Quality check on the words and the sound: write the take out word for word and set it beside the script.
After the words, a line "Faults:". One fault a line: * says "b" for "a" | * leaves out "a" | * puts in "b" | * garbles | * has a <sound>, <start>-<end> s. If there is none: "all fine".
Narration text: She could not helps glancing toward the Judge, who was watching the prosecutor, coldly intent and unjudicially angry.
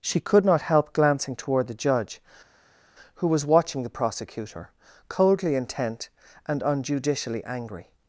She could not help glancing toward the Judge, who was watching the prosecutor, coldly intent and unjudicially angry.
Faults:
* says "help" for "helps"